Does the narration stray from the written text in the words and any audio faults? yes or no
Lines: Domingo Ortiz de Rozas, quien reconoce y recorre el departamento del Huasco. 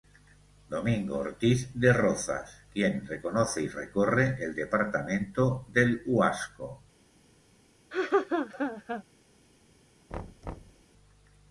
yes